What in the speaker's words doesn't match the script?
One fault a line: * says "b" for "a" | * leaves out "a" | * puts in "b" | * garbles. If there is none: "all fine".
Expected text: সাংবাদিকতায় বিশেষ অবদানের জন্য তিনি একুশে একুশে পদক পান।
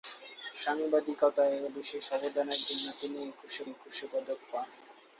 all fine